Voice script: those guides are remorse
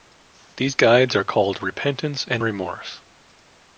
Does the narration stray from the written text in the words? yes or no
yes